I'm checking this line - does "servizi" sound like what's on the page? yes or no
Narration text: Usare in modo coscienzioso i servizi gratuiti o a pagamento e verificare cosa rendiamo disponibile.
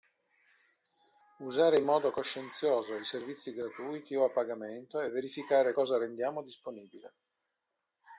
yes